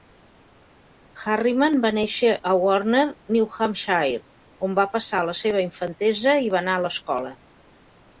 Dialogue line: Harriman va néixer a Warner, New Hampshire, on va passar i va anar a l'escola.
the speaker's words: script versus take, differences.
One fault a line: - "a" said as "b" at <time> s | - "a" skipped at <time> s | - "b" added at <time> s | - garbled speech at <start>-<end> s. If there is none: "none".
- "la seva infantesa" added at 5.3 s